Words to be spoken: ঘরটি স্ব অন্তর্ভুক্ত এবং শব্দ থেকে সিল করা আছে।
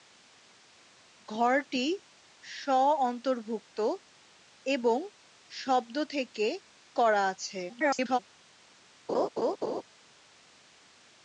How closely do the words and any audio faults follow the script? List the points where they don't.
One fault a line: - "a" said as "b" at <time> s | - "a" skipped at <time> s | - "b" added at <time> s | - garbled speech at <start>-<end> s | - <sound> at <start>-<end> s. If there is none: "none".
- "সিল" skipped at 6.5 s
- garbled speech at 7.7-8.2 s
- laugh at 9.1-9.8 s